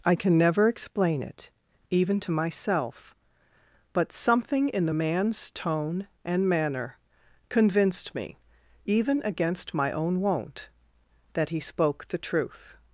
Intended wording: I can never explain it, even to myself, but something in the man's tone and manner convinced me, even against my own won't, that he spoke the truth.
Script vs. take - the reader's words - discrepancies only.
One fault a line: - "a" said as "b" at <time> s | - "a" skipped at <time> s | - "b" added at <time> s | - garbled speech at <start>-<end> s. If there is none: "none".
none